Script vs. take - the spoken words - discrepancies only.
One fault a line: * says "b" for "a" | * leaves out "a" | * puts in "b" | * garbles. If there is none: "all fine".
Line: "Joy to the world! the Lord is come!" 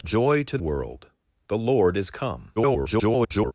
* leaves out "the"
* garbles